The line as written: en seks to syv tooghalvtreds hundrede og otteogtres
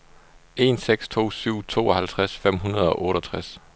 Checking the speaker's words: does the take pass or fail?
fail